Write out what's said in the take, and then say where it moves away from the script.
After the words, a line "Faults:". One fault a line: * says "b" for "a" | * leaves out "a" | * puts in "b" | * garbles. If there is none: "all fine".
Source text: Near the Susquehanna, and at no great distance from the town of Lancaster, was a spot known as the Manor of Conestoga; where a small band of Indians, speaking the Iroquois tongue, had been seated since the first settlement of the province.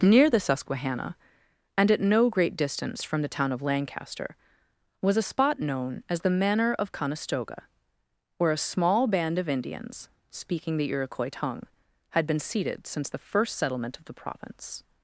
Near the Susquehanna, and at no great distance from the town of Lancaster, was a spot known as the Manor of Conestoga; where a small band of Indians, speaking the Iroquois tongue, had been seated since the first settlement of the province.
Faults:
all fine